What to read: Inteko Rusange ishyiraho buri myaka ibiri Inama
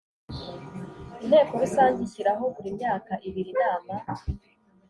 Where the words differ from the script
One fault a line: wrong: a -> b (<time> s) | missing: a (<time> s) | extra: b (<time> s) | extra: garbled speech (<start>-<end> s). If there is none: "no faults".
no faults